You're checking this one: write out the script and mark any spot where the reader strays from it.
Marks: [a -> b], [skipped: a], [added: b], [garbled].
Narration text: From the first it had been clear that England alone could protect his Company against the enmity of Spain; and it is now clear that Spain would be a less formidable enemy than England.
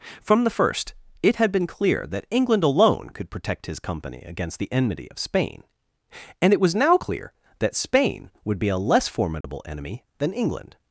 From the first it had been clear that England alone could protect his Company against the enmity of Spain; and it [is -> was] now clear that Spain would be a less formidable enemy than England.